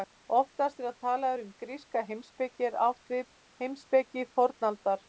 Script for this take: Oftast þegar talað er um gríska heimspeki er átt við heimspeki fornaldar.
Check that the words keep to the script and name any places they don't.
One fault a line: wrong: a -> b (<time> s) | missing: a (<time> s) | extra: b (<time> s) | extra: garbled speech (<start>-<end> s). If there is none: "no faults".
no faults